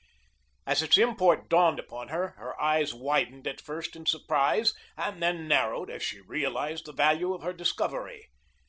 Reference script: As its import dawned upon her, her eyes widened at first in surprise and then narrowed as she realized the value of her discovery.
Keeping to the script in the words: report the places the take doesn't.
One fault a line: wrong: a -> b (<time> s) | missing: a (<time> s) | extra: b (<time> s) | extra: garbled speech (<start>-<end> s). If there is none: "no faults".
no faults